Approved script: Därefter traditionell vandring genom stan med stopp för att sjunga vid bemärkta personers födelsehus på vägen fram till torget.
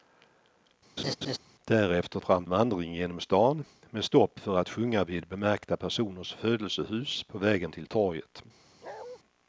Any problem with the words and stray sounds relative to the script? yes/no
yes